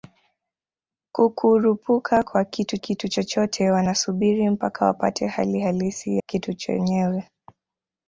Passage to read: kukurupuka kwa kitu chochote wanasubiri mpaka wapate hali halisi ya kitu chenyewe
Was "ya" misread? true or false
true